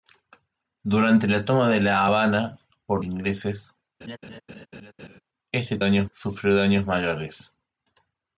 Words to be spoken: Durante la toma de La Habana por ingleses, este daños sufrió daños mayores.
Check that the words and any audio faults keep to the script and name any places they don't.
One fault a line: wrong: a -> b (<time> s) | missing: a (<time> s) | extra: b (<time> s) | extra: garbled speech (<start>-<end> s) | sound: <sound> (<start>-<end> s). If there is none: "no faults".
sound: laugh (4.0-5.2 s)